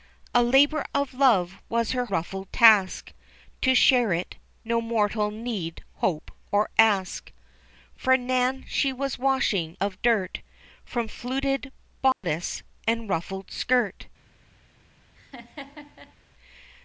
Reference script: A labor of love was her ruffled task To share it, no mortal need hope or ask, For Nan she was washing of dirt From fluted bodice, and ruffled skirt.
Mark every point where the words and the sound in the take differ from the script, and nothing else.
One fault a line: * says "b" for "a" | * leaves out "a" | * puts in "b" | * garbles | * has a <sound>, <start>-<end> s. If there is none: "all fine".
* has a dropout, 12.1-12.2 s
* has a laugh, 15.2-16.2 s